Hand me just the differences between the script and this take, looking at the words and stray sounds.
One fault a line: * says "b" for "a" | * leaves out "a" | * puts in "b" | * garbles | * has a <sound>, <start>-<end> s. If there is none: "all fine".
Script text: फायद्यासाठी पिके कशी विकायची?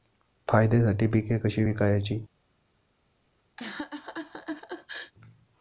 * has a laugh, 3.6-5.1 s